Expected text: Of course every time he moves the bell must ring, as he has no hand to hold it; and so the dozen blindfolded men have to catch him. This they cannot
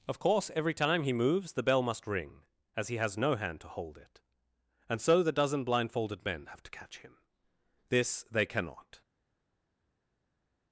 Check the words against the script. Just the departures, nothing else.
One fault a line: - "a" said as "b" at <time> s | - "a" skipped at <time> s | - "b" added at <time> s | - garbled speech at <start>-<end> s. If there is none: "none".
none